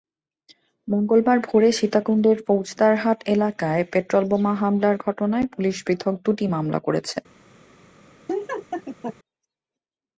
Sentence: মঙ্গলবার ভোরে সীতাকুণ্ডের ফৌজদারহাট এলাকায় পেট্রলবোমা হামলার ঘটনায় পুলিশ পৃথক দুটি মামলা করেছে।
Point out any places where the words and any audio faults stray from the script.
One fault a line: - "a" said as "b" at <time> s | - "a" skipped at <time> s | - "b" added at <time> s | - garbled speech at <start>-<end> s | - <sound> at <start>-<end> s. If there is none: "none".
- laugh at 8.3-9.2 s